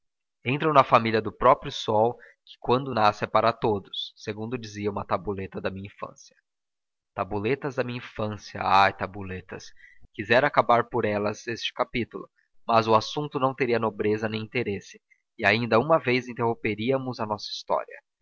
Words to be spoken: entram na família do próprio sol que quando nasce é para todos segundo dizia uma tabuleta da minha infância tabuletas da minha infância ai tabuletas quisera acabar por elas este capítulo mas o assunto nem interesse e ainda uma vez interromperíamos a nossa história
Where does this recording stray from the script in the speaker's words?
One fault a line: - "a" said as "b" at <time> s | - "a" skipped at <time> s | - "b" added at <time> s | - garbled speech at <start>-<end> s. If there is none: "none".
- "não teria nobreza" added at 13.4 s